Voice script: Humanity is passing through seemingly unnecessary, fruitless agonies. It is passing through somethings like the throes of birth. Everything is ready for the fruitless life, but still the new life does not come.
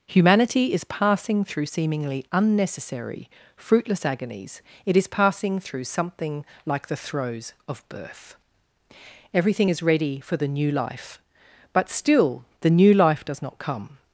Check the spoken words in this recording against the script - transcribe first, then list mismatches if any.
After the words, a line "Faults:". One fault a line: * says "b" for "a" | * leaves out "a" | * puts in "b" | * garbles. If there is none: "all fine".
Humanity is passing through seemingly unnecessary, fruitless agonies. It is passing through something like the throes of birth. Everything is ready for the new life, but still the new life does not come.
Faults:
* says "something" for "somethings"
* says "new" for "fruitless"